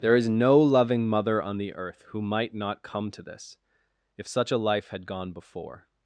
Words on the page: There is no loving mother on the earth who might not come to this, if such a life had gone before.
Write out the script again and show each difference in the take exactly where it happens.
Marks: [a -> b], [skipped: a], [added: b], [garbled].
There is no loving mother on the earth who might not come to this, if such a life had gone before.